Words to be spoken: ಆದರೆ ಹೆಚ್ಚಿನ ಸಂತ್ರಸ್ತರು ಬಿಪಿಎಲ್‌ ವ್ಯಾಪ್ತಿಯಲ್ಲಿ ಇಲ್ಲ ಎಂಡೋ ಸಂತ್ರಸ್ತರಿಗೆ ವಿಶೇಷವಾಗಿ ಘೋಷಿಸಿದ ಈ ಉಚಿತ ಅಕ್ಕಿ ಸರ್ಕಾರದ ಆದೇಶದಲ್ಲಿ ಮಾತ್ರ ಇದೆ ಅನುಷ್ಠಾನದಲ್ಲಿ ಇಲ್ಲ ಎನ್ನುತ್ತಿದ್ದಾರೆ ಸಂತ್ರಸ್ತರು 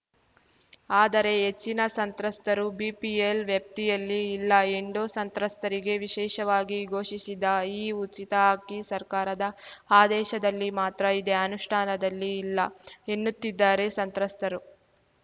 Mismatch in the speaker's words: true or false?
false